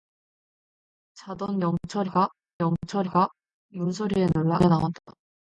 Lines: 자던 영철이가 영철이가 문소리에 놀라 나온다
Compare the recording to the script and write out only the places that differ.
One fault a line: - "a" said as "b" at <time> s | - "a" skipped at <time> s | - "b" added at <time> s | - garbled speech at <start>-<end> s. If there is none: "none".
none